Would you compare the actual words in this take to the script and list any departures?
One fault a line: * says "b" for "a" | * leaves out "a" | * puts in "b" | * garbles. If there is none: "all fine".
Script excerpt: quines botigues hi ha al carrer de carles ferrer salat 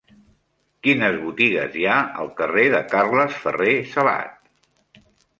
all fine